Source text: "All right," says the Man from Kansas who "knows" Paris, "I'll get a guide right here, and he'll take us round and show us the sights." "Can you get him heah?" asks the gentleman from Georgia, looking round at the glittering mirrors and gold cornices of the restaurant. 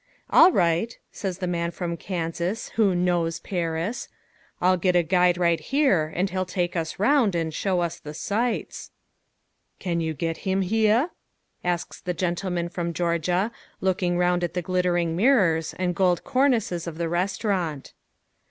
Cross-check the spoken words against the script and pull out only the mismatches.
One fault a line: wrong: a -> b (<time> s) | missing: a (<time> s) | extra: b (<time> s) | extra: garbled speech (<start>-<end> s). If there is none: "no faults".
no faults